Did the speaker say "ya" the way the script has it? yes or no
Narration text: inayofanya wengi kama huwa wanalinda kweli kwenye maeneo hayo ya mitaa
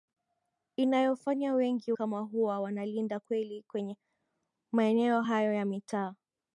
yes